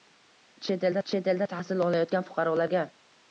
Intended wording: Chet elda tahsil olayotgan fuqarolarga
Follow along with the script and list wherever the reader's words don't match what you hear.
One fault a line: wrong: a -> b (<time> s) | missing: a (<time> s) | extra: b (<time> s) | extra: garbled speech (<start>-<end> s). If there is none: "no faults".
extra: chet elda (1.1 s)